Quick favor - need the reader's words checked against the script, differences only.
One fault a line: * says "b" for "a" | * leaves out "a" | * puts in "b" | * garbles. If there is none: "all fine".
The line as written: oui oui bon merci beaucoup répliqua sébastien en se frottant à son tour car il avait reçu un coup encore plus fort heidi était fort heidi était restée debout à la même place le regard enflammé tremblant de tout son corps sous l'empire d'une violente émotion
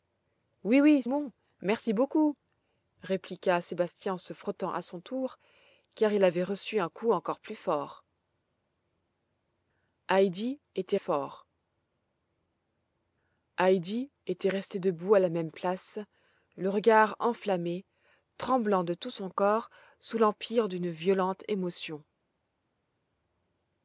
all fine